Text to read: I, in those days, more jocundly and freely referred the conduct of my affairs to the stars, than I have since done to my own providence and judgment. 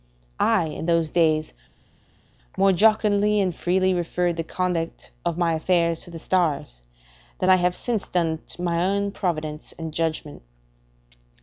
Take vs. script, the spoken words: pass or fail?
pass